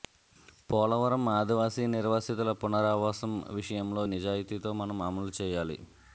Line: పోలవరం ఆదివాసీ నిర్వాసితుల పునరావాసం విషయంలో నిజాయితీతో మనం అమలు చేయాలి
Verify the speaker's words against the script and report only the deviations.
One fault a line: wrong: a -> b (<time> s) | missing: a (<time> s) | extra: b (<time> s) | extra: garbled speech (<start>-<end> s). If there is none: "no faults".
no faults